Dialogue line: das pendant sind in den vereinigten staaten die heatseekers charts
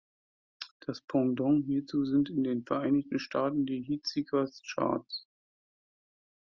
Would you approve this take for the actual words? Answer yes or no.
no